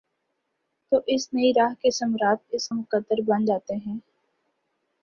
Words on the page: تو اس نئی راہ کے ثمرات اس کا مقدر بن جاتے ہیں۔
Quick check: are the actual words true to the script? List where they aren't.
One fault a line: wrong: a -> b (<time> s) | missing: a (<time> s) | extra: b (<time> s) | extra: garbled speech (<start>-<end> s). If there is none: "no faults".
missing: کا (2.7 s)